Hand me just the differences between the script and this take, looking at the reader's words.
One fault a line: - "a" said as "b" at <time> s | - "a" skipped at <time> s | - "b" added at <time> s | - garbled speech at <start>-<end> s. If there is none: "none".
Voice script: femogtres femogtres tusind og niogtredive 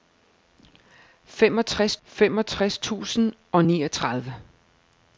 none